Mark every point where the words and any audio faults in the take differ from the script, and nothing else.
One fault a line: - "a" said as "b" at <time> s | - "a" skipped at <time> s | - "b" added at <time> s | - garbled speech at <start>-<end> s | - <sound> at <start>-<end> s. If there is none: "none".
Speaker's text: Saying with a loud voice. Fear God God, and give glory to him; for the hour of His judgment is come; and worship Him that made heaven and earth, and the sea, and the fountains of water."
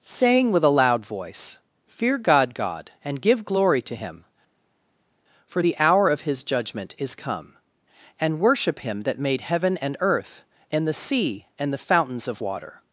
none